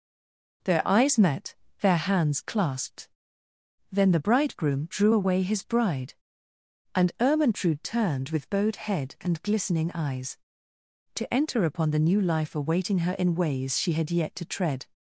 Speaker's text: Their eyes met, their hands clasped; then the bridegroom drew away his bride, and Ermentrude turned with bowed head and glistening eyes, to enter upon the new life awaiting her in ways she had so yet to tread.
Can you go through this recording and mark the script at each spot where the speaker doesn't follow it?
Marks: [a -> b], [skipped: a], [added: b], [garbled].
Their eyes met, their hands clasped; then the bridegroom drew away his bride, and Ermentrude turned with bowed head and glistening eyes, to enter upon the new life awaiting her in ways she had [skipped: so] yet to tread.